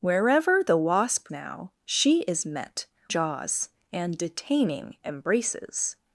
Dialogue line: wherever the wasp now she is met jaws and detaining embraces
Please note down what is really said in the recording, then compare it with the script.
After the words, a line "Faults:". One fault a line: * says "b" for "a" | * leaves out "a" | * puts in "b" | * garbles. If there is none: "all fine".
wherever the wasp now she is met jaws and detaining embraces
Faults:
all fine